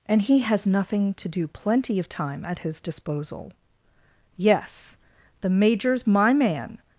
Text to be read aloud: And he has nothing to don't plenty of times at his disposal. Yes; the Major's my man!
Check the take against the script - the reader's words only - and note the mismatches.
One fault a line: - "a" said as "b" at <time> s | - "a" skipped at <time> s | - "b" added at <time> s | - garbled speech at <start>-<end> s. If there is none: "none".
- "don't" said as "do" at 1.3 s
- "times" said as "time" at 2.1 s